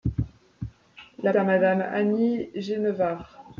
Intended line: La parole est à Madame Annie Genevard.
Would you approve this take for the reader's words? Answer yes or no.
no